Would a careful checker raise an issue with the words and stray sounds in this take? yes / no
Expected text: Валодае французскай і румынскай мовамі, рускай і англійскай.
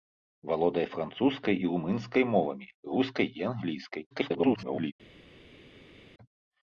yes